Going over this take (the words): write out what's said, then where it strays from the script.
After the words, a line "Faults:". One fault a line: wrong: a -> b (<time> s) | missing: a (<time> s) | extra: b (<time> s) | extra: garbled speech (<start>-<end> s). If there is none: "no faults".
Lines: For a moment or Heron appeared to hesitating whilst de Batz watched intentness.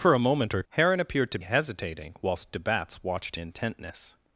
For a moment or Heron appeared to hesitating whilst de Batz watched intentness.
Faults:
no faults